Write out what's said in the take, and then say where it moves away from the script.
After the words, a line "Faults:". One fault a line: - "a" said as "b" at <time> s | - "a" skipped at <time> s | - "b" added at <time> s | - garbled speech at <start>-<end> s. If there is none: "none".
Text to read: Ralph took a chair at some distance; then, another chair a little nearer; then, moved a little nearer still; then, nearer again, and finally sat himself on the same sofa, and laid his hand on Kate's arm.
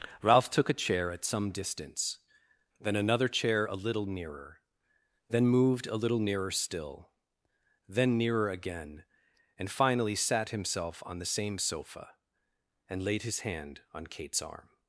Ralph took a chair at some distance; then, another chair a little nearer; then, moved a little nearer still; then, nearer again, and finally sat himself on the same sofa, and laid his hand on Kate's arm.
Faults:
none